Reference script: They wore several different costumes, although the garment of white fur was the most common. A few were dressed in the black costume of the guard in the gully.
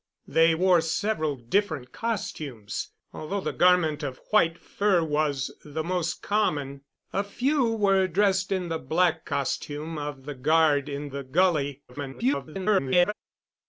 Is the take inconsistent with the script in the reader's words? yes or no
yes